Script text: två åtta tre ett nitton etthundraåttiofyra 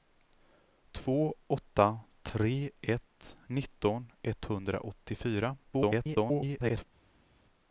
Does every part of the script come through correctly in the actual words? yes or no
no